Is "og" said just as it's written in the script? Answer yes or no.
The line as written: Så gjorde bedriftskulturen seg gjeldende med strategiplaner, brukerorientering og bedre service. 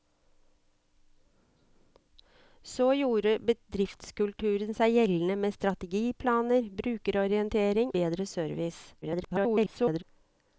no